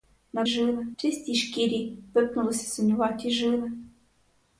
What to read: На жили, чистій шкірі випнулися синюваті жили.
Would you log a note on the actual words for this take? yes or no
no